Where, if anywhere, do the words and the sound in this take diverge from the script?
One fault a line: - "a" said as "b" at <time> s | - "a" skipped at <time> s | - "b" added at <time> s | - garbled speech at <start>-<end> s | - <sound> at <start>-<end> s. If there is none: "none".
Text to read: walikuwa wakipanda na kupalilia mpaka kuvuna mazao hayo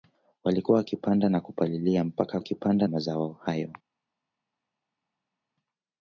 - "kuvuna" said as "wakipanda" at 2.4 s